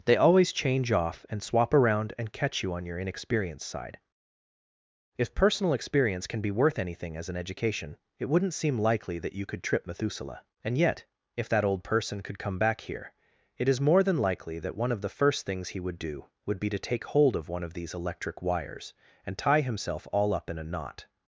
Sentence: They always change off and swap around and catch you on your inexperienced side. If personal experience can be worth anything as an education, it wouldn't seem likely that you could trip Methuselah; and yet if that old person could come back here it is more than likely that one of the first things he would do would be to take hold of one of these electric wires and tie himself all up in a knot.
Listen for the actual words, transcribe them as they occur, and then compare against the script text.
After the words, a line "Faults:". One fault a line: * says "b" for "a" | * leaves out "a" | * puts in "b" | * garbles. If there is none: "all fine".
They always change off and swap around and catch you on your inexperienced side. If personal experience can be worth anything as an education, it wouldn't seem likely that you could trip Methuselah; and yet if that old person could come back here it is more than likely that one of the first things he would do would be to take hold of one of these electric wires and tie himself all up in a knot.
Faults:
all fine